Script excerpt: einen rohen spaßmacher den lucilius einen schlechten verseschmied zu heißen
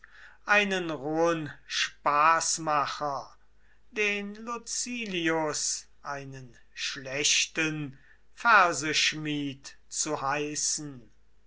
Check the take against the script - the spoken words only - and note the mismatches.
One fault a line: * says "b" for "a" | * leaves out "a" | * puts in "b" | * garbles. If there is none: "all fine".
all fine